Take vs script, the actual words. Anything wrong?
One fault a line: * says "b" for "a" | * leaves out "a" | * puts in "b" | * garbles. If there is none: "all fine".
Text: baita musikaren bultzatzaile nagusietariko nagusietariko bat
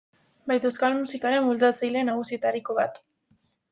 * puts in "euskal"
* leaves out "nagusietariko"